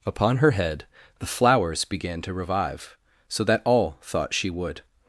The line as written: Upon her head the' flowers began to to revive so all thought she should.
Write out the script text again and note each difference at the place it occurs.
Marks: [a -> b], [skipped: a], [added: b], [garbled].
Upon her head the' flowers began to [skipped: to] revive so [added: that] all thought she [should. -> would]